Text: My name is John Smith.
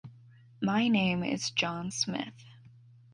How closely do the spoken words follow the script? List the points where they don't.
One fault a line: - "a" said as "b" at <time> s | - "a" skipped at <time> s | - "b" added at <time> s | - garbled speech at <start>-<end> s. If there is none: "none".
none